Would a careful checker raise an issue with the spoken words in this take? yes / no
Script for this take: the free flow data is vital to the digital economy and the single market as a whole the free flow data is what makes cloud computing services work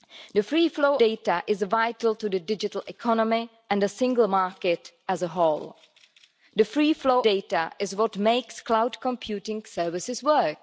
no